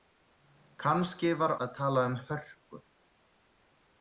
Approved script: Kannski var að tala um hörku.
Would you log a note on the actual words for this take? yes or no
no